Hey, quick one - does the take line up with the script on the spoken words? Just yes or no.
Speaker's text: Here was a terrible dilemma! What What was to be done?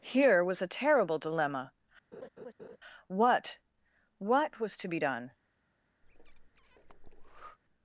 yes